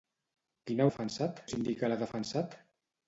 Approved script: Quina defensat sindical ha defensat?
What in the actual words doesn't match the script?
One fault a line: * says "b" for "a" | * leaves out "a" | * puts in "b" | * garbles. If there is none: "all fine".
all fine